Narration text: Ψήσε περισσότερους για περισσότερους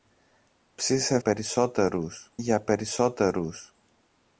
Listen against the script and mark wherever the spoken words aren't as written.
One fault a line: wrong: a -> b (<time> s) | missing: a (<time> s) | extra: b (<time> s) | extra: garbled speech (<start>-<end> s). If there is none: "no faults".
no faults